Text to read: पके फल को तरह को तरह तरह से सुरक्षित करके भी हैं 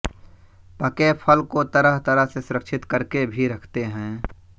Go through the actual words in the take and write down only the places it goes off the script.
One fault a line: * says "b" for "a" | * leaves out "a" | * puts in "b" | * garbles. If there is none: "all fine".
* leaves out "को"
* leaves out "तरह"
* puts in "रखते"